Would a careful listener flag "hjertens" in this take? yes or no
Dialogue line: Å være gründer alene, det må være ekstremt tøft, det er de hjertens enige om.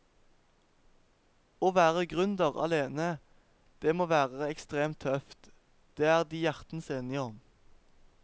no